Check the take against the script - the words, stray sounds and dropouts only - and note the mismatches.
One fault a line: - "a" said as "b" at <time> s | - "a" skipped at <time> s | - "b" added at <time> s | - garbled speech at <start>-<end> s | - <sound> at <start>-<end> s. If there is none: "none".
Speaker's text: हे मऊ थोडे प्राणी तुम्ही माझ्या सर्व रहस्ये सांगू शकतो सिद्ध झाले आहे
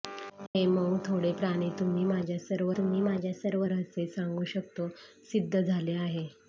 - dropout at 0.5-0.6 s
- "तुम्ही माझ्या सर्व" added at 2.8 s